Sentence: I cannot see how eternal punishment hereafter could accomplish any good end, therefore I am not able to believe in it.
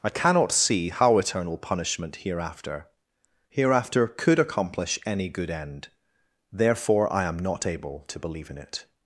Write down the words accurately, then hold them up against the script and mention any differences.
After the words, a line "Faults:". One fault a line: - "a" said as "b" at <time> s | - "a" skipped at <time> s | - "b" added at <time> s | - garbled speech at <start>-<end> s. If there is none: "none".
I cannot see how eternal punishment hereafter hereafter could accomplish any good end, therefore I am not able to believe in it.
Faults:
- "hereafter" added at 3.5 s